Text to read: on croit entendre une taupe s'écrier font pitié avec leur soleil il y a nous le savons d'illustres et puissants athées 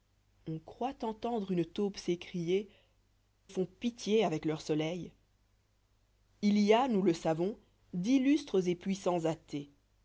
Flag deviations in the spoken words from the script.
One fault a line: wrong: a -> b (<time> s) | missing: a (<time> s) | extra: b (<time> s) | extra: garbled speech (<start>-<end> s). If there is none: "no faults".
no faults